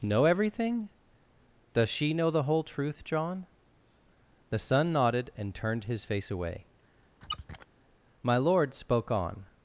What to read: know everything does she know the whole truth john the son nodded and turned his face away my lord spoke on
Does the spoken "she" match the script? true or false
true